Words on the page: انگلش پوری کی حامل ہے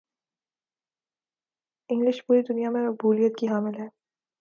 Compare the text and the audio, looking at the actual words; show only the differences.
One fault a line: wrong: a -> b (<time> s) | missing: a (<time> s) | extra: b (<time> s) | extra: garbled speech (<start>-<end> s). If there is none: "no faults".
extra: دنیا میں مقبولیت (2.4 s)